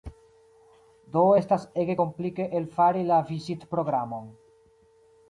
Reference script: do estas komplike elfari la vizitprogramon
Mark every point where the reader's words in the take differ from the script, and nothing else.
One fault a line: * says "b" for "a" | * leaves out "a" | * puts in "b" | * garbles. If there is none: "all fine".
* puts in "ege"